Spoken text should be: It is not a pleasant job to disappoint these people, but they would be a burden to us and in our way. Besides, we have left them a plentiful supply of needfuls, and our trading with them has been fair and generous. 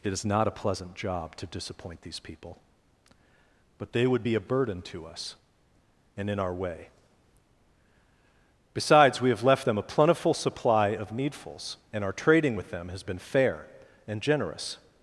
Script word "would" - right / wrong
right